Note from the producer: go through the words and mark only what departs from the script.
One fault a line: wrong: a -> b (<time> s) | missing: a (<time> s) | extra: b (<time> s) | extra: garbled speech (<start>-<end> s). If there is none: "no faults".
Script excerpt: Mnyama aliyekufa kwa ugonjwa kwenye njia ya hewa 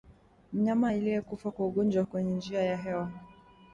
no faults